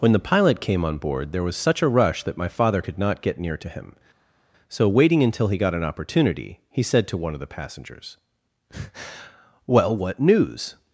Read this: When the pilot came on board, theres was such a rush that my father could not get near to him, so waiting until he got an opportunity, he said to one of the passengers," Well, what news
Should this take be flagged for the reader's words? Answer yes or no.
yes